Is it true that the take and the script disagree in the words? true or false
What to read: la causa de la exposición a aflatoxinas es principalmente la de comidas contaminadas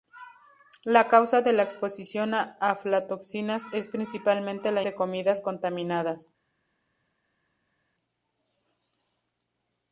false